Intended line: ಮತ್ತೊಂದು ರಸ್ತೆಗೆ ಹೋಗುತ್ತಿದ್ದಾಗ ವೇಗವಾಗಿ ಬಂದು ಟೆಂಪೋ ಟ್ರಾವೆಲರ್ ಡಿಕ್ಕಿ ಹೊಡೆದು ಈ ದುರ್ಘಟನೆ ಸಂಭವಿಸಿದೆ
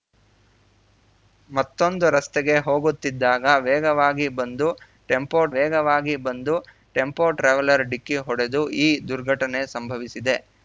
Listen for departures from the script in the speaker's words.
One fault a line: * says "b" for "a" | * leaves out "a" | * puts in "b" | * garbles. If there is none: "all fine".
* puts in "ವೇಗವಾಗಿ ಬಂದು ಟೆಂಪೋ"